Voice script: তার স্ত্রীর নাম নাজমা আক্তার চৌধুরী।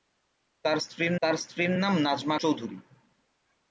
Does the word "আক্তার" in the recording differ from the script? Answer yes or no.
yes